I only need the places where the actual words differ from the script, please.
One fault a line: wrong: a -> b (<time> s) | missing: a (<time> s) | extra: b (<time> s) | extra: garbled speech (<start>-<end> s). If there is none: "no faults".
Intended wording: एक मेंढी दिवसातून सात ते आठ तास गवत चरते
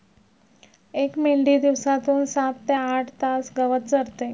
no faults